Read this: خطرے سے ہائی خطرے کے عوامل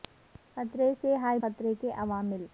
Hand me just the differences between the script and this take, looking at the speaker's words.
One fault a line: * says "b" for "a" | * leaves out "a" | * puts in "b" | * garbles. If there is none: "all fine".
all fine